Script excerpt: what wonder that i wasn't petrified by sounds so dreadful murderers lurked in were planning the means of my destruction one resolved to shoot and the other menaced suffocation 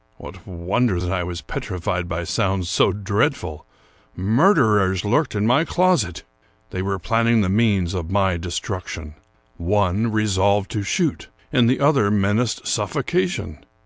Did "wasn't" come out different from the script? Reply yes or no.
yes